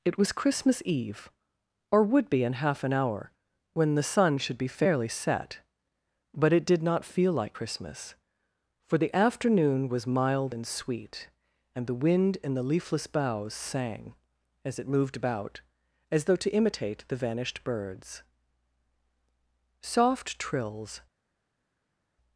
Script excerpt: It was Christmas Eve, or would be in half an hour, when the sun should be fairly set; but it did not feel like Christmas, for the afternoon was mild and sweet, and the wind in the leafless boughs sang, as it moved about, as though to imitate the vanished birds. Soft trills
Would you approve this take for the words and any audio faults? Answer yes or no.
yes